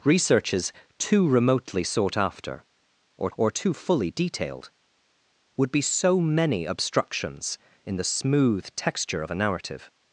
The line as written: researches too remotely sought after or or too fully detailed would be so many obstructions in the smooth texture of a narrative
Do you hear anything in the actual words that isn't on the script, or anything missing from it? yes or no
no